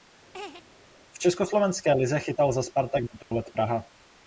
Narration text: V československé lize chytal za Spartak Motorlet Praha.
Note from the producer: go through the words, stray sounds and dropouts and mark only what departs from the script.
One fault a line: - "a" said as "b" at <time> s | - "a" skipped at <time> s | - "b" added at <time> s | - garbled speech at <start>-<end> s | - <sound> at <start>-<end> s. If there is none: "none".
- laugh at 0.3-0.6 s
- dropout at 3.2-3.3 s